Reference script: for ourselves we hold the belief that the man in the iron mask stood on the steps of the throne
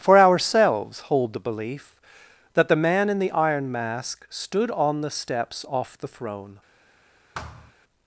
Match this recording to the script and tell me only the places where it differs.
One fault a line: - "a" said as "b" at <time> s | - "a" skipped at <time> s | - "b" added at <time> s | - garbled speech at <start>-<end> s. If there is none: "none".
- "we" skipped at 1.0 s
- "of" said as "off" at 5.7 s